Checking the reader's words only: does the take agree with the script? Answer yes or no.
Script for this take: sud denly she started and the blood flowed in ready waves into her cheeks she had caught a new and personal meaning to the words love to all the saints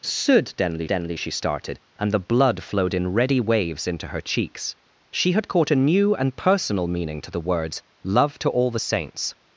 no